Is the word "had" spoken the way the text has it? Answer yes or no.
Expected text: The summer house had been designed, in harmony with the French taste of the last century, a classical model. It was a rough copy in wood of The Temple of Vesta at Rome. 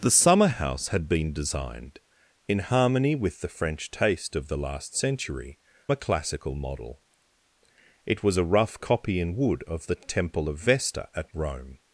yes